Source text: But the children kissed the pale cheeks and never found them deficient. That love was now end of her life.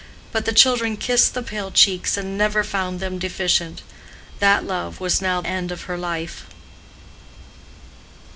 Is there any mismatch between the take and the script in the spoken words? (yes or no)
no